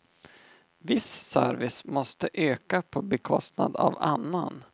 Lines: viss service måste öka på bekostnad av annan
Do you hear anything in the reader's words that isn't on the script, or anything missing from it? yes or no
no